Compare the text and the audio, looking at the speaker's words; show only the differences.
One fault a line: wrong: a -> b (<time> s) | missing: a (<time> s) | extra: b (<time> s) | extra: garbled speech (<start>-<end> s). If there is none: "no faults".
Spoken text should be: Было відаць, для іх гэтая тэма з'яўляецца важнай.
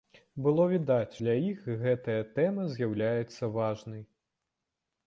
no faults